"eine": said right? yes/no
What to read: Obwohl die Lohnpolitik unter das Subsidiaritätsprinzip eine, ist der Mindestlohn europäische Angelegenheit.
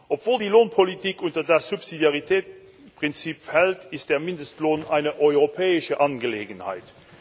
no